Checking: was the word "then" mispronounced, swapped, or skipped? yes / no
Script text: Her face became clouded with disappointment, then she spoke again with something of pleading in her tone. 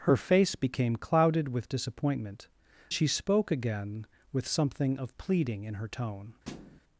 yes